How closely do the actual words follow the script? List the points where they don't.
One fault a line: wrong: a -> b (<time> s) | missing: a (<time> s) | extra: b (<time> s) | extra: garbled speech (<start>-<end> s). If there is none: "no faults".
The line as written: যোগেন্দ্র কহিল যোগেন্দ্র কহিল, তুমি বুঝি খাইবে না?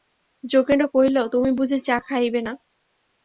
missing: যোগেন্দ্র কহিল (1.2 s)
extra: চা (1.8 s)